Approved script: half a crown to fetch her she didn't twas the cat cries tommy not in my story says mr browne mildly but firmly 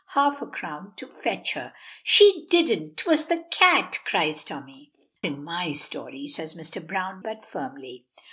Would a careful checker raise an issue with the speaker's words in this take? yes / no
yes